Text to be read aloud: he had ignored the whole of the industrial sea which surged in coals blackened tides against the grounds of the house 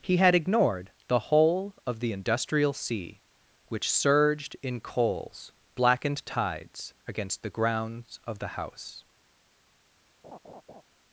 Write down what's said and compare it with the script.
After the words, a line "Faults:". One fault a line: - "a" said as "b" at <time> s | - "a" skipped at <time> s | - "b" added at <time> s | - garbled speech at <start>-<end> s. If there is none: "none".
he had ignored the whole of the industrial sea which surged in coals blackened tides against the grounds of the house
Faults:
none